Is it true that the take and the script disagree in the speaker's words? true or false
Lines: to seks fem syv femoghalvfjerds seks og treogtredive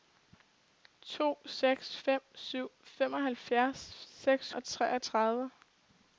false